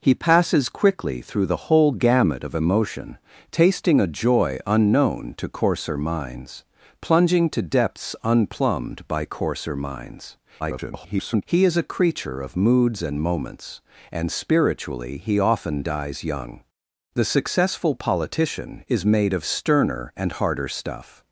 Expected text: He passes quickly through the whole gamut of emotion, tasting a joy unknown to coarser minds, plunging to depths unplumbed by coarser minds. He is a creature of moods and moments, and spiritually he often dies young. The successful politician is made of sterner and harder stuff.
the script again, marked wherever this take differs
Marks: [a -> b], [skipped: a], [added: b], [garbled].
He passes quickly through the whole gamut of emotion, tasting a joy unknown to coarser minds, plunging to depths unplumbed by coarser minds. [garbled] He is a creature of moods and moments, and spiritually he often dies young. The successful politician is made of sterner and harder stuff.